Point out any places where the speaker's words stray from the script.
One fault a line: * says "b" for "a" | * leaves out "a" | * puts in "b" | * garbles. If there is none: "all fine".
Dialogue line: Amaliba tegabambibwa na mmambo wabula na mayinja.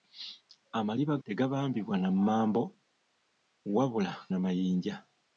all fine